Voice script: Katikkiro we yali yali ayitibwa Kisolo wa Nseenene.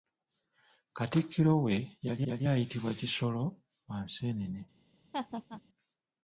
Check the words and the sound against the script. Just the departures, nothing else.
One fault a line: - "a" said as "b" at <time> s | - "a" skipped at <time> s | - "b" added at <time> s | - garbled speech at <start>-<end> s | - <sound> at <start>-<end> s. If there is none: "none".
- laugh at 5.1-5.6 s